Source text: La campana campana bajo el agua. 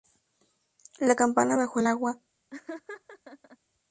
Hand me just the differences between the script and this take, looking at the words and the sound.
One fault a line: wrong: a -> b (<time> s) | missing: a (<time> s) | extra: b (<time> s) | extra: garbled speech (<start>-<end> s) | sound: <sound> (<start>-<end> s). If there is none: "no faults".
missing: campana (1.6 s)
sound: laugh (2.5-3.6 s)